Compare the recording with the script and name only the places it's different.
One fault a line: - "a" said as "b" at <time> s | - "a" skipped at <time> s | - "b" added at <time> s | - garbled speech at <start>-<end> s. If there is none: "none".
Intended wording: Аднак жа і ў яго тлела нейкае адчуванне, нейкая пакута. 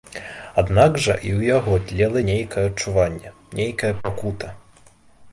none